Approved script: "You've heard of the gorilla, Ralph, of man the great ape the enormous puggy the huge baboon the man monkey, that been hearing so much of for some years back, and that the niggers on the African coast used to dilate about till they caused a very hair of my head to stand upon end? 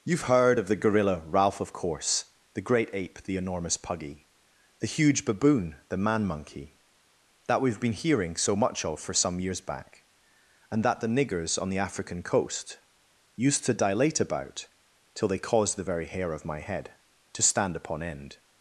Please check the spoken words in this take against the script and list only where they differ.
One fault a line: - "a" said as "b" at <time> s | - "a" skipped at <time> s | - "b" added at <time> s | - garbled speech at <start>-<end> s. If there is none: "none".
- "man" said as "course" at 1.7 s
- "we've" added at 7.6 s
- "a" said as "the" at 15.8 s